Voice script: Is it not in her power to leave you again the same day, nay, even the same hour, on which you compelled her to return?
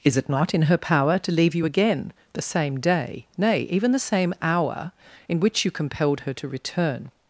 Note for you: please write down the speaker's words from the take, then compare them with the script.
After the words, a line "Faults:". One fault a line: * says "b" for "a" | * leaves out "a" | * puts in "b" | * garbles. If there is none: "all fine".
Is it not in her power to leave you again the same day, nay, even the same hour, in which you compelled her to return?
Faults:
* says "in" for "on"